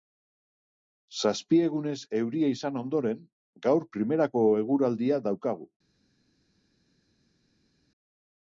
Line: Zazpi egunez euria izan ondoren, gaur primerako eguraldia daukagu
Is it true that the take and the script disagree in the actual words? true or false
false